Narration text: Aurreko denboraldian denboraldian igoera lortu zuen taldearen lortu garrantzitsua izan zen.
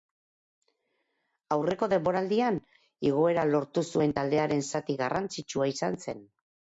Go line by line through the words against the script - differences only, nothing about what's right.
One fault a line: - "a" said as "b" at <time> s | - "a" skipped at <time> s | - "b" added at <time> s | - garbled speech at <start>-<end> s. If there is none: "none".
- "denboraldian" skipped at 2.6 s
- "lortu" said as "zati" at 4.7 s